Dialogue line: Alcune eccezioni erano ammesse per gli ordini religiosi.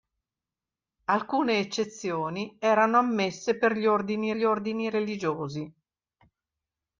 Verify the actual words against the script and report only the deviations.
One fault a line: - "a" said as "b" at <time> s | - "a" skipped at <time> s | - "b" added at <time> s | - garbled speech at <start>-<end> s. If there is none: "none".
- "gli ordini" added at 4.3 s